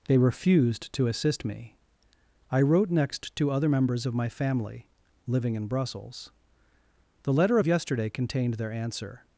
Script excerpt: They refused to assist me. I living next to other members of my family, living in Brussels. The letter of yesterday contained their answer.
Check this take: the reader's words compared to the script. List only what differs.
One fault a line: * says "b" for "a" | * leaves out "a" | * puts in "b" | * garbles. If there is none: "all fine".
* says "wrote" for "living"